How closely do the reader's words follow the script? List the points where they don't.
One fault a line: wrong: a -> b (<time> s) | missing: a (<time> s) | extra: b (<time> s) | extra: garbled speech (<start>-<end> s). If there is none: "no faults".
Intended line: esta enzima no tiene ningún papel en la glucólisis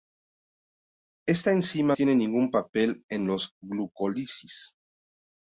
missing: no (1.9 s)